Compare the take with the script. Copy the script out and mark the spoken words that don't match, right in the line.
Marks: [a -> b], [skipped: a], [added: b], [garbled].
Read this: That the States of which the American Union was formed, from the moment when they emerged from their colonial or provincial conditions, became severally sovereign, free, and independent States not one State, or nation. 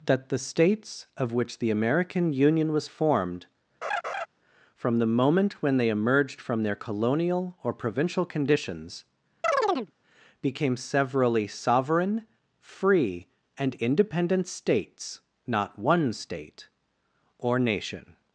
That the States of which the American Union was formed, from the moment when they emerged from their colonial or provincial conditions, became severally sovereign, free, and independent States not one State, or nation.